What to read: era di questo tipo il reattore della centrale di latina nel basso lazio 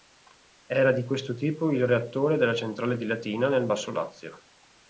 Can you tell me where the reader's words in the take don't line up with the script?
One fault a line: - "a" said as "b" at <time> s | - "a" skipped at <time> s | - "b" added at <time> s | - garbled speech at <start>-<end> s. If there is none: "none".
none